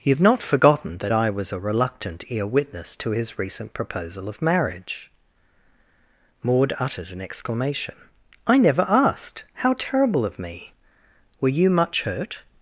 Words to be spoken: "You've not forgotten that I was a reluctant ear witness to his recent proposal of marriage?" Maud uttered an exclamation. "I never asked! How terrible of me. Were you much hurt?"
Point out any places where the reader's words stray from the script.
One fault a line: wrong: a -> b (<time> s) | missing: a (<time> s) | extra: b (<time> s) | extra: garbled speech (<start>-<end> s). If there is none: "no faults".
no faults